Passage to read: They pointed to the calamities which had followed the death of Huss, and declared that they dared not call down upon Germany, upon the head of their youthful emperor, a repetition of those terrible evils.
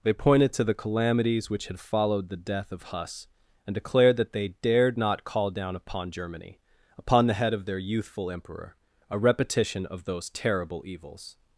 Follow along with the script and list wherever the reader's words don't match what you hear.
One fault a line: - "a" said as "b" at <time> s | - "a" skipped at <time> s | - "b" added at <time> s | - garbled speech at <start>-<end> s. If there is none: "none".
none